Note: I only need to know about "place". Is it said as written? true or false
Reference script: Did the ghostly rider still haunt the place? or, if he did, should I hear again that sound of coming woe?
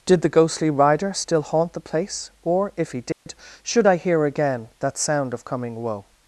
true